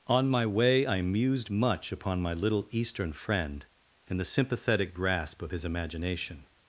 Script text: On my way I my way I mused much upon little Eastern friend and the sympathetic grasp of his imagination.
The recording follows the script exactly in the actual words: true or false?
false